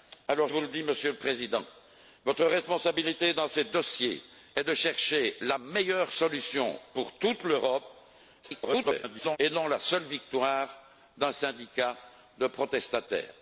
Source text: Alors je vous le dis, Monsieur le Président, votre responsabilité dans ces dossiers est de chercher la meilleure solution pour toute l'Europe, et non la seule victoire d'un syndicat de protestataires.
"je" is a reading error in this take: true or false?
true